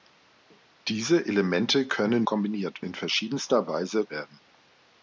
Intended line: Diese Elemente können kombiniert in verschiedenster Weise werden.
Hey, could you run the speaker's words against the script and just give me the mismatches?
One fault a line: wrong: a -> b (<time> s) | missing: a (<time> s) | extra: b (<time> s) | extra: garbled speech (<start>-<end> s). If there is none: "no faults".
no faults